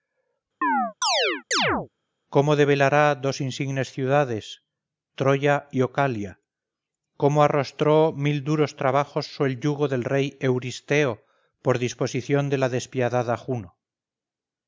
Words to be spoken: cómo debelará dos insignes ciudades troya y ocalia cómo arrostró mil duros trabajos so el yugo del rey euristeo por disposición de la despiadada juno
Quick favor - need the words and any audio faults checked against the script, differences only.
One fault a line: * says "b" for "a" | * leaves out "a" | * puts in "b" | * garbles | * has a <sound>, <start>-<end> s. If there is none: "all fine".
* has a chirp, 0.6-1.9 s